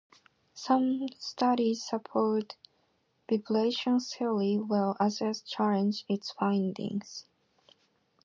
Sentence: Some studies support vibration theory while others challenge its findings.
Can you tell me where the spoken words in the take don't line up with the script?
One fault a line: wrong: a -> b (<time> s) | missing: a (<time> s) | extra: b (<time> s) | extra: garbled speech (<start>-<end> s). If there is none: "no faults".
no faults